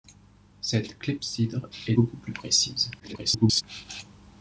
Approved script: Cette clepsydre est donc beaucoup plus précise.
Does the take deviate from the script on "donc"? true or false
true